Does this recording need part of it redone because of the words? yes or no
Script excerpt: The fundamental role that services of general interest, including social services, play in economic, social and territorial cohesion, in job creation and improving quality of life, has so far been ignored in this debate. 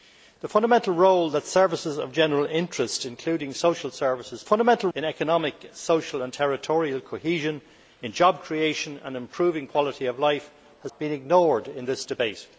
yes